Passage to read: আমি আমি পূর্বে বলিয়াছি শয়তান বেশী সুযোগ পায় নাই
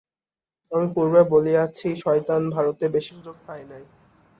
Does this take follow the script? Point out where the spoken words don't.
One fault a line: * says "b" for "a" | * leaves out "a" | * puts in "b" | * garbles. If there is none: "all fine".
* leaves out "আমি"
* puts in "ভারতে"